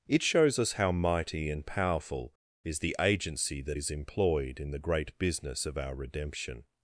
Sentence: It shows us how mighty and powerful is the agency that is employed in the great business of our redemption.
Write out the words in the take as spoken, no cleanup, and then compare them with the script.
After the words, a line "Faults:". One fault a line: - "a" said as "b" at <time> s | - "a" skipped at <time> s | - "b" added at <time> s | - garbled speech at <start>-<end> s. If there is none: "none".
It shows us how mighty and powerful is the agency that is employed in the great business of our redemption.
Faults:
none